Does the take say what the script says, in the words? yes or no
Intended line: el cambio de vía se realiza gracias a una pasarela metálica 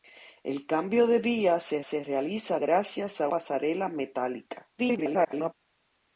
no